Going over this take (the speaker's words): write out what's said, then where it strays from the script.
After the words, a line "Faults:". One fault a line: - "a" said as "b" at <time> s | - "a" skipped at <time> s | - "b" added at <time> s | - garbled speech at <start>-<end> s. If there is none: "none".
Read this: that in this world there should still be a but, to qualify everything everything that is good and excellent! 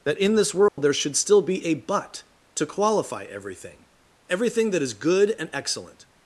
that in this world there should still be a but, to qualify everything everything that is good and excellent!
Faults:
none